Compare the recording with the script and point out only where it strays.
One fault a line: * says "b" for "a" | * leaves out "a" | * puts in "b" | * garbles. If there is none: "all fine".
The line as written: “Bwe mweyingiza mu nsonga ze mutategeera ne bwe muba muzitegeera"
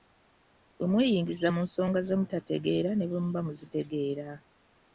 all fine